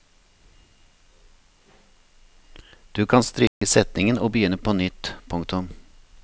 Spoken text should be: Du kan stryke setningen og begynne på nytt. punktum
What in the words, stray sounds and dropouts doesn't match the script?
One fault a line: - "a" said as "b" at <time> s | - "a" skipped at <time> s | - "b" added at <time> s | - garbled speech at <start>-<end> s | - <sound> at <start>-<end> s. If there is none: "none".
- dropout at 3.5-3.6 s